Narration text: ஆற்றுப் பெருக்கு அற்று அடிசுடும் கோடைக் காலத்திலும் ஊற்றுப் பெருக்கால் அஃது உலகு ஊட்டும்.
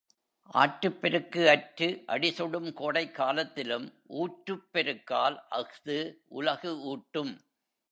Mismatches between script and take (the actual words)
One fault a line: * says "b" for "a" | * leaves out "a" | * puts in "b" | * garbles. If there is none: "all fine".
all fine